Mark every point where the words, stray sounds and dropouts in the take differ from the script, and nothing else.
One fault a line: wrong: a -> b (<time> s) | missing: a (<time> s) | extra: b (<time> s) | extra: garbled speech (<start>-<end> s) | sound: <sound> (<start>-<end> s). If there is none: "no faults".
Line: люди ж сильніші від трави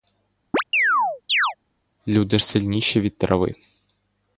sound: chirp (0.5-1.5 s)